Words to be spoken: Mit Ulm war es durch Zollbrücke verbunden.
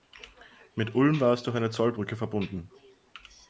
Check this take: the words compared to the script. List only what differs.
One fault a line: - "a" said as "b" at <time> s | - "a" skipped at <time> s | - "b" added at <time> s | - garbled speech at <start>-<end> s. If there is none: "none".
- "eine" added at 1.6 s